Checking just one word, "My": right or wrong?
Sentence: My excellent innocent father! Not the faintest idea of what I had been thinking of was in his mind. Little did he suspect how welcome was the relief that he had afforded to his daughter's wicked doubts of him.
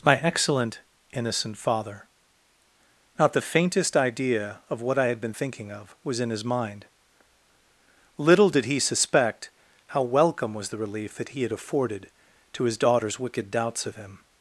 right